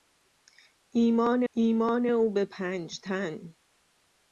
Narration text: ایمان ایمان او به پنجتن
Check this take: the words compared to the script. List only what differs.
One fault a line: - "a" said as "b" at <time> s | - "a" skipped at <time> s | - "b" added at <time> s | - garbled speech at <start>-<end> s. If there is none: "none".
none